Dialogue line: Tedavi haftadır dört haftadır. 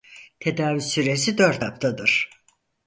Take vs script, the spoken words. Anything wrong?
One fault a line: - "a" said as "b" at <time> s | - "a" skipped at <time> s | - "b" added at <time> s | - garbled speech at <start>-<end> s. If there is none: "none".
- "haftadır" said as "süresi" at 0.8 s